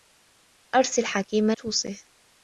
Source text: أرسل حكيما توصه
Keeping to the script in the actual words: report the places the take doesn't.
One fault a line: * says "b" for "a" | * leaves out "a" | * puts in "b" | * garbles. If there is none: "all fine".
all fine